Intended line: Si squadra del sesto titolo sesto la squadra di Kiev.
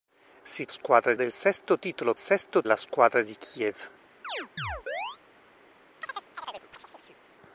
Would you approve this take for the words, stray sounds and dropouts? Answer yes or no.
no